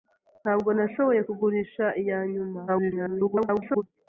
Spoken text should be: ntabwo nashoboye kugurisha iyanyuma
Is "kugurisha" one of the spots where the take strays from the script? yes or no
no